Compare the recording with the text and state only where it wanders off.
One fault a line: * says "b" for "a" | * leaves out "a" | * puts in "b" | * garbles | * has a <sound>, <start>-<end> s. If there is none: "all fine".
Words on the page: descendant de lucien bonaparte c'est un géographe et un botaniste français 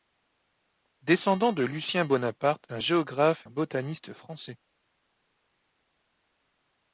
* leaves out "c'est"
* leaves out "et"